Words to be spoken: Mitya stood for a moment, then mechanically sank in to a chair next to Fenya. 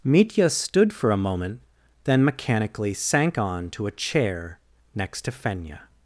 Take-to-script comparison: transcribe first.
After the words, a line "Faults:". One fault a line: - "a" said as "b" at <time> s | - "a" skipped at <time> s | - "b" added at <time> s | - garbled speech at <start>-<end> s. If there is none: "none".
Mitya stood for a moment, then mechanically sank on to a chair next to Fenya.
Faults:
- "in" said as "on" at 3.4 s